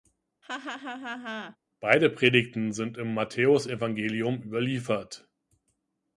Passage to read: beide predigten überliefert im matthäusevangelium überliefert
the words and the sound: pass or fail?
fail